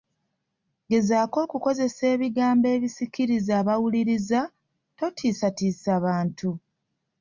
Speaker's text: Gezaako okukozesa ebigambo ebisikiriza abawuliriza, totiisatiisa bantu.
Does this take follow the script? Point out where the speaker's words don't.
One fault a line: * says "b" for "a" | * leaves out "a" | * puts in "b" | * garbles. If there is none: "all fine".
all fine